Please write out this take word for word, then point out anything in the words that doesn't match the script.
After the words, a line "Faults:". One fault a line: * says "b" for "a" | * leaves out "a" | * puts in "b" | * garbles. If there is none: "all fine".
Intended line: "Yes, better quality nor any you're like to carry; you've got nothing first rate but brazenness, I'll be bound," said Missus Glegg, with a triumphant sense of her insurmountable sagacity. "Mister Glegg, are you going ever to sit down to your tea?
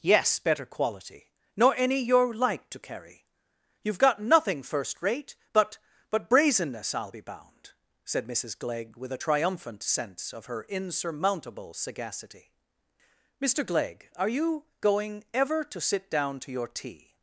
"Yes, better quality nor any you're like to carry; you've got nothing first rate but but brazenness, I'll be bound," said Missus Glegg, with a triumphant sense of her insurmountable sagacity. "Mister Glegg, are you going ever to sit down to your tea?
Faults:
* puts in "but"